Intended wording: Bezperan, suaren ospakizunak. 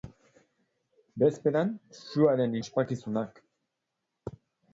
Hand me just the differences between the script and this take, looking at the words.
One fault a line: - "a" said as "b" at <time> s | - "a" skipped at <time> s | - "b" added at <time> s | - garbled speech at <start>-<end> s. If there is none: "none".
none